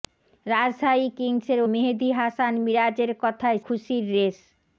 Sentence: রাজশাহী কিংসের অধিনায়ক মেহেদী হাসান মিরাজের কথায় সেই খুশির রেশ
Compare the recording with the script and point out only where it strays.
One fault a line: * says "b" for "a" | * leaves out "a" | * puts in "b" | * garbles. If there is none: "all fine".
* leaves out "অধিনায়ক"
* leaves out "সেই"